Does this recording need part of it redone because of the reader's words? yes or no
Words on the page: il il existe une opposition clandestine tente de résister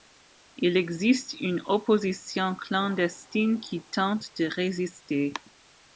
yes